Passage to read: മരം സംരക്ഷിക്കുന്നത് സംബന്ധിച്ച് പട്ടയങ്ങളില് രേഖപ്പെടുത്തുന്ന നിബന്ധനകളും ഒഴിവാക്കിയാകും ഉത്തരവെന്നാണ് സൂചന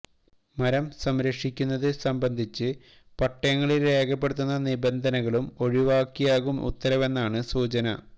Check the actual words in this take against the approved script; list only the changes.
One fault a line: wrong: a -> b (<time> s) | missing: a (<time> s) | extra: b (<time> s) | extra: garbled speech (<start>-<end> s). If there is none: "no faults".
no faults